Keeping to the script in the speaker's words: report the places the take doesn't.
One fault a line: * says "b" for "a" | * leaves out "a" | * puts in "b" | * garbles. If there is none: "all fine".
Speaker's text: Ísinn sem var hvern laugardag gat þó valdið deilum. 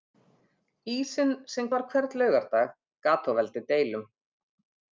all fine